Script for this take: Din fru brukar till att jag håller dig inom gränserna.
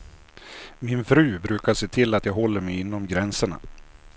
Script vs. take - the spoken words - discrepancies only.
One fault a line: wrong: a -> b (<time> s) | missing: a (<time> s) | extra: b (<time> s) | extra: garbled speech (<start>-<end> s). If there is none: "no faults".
wrong: Din -> Min (0.8 s)
extra: se (1.7 s)
wrong: dig -> mig (2.6 s)